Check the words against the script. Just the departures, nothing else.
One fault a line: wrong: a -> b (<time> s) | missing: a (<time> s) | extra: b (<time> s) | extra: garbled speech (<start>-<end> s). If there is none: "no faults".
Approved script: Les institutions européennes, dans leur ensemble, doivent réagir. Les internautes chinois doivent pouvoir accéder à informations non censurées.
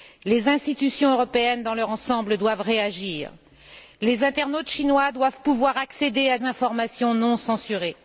no faults